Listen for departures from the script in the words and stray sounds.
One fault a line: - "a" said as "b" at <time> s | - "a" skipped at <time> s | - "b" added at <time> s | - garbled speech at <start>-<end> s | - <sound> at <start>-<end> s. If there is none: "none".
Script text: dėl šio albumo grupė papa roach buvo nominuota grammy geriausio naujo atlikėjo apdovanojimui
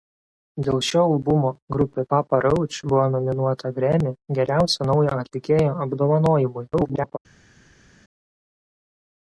- garbled speech at 6.7-7.2 s